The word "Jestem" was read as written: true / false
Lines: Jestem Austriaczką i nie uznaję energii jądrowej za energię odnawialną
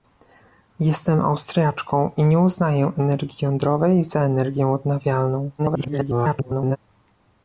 true